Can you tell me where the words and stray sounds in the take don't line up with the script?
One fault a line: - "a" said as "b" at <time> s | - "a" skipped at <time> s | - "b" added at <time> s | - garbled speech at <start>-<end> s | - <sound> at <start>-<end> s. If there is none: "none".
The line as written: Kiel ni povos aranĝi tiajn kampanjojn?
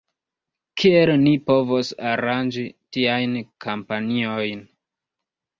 none